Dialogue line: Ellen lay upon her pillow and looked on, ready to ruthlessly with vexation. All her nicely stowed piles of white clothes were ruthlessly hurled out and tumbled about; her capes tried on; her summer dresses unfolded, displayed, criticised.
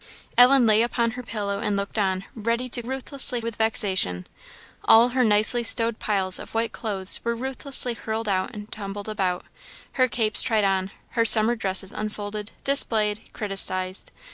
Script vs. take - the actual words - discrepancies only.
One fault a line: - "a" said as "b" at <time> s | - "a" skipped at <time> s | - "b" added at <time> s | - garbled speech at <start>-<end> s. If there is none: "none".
none